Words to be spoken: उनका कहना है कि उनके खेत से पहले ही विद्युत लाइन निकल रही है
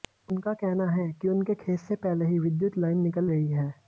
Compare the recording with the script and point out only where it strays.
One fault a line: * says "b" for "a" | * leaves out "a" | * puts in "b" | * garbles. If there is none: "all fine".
all fine